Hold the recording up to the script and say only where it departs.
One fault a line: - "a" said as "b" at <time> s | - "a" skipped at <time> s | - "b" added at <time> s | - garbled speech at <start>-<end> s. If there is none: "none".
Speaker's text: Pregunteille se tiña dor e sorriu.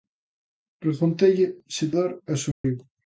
- "tiña" skipped at 1.9 s